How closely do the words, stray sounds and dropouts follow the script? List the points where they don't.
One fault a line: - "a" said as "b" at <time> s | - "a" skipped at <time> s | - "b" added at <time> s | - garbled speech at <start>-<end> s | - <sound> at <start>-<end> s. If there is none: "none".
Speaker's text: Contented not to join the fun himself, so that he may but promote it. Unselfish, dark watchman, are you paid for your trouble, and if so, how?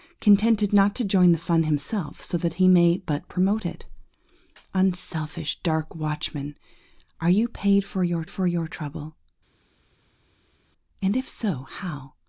- "for your" added at 8.3 s